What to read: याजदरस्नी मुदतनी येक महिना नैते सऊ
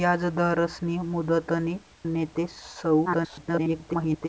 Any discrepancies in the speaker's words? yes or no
yes